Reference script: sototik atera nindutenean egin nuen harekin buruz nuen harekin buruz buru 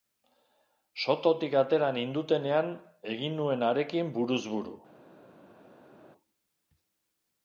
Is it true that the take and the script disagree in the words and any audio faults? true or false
true